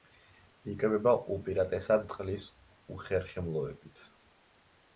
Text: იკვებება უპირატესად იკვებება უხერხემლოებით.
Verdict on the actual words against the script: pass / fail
fail